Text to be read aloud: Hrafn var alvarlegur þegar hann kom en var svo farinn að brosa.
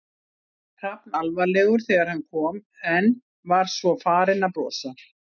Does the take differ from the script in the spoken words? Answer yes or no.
yes